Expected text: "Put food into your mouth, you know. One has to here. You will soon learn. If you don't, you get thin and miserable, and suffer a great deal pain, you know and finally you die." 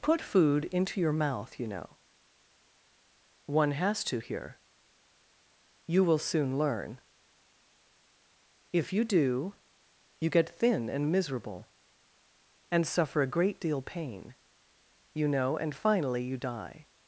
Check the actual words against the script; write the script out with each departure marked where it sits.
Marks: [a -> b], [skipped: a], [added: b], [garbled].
"Put food into your mouth, you know. One has to here. You will soon learn. If you [don't, -> do] you get thin and miserable, and suffer a great deal pain, you know and finally you die."